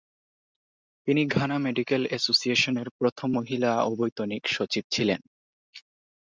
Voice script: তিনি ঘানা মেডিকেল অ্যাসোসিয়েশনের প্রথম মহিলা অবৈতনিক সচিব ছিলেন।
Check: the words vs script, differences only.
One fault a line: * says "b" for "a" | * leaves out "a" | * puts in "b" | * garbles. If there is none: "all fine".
all fine